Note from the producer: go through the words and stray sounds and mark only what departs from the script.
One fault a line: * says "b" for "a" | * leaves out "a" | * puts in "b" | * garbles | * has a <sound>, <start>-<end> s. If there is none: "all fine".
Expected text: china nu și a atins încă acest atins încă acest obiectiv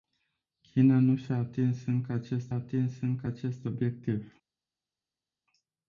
all fine